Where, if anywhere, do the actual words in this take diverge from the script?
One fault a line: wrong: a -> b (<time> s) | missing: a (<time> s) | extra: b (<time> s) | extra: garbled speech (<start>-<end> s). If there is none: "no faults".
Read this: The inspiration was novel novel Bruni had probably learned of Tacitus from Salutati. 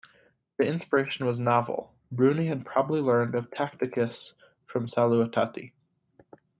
missing: novel (1.9 s)